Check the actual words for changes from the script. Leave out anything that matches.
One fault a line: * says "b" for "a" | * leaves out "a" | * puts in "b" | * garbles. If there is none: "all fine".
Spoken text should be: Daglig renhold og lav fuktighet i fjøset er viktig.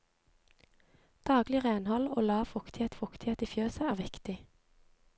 * puts in "fuktighet"